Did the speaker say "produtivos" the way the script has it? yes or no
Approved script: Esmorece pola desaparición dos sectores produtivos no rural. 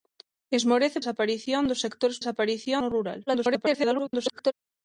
no